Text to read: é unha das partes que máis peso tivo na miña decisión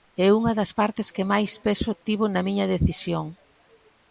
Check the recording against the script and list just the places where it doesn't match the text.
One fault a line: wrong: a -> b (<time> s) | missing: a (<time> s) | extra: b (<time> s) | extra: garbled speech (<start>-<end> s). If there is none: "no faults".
no faults